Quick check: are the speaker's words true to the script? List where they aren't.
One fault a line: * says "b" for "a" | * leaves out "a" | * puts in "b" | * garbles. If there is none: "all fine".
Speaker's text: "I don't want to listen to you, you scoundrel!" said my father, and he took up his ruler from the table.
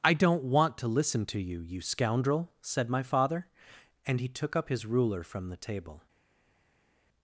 all fine